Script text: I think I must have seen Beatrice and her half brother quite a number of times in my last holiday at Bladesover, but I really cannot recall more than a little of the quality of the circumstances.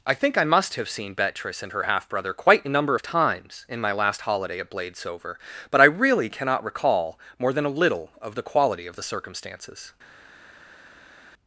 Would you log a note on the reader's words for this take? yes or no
no